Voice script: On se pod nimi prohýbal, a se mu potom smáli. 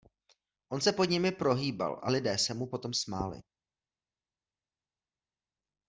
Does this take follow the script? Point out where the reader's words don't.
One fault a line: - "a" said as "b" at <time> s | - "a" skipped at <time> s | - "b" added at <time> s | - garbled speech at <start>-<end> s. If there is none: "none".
- "lidé" added at 2.1 s